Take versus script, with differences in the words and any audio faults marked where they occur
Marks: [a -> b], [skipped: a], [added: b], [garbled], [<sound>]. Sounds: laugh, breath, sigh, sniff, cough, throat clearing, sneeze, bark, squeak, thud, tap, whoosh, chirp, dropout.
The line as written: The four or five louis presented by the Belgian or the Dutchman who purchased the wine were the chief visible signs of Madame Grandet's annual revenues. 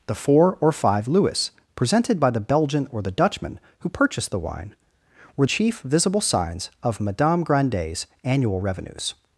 The four or five louis presented by the Belgian or the Dutchman who purchased the wine were [skipped: the] chief visible signs of Madame Grandet's annual revenues.